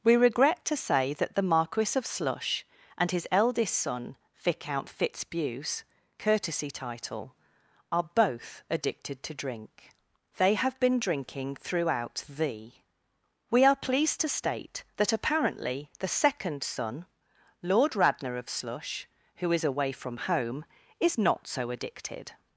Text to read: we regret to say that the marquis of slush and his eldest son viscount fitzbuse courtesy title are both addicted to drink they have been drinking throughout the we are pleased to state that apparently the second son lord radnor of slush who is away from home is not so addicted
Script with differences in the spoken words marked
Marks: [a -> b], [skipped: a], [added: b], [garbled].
we regret to say that the marquis of slush and his eldest son viscount fitzbuse courtesy title are both addicted to drink they have been drinking throughout the we are pleased to state that apparently the second son lord radnor of slush who is away from home is not so addicted